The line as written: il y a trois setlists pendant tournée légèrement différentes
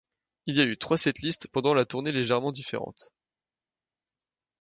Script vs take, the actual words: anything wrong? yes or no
yes